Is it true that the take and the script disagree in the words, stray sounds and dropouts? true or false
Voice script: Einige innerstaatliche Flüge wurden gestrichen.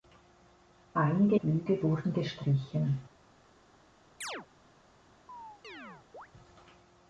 true